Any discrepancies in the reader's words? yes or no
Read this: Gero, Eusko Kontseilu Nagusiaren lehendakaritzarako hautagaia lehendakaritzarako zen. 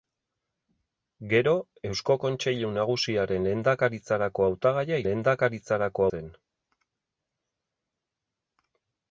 no